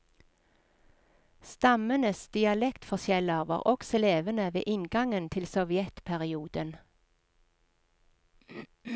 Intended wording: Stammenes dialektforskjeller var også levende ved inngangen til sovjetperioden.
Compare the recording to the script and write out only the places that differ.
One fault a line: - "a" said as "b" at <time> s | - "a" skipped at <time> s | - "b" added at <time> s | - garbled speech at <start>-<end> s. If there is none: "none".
none